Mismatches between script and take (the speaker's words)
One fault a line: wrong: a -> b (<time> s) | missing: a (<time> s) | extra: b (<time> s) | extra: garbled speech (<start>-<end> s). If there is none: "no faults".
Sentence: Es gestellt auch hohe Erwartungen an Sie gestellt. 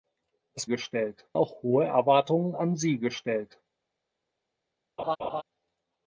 no faults